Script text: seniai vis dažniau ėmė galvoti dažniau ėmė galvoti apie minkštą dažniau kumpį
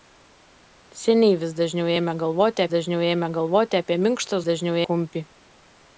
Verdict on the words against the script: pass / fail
pass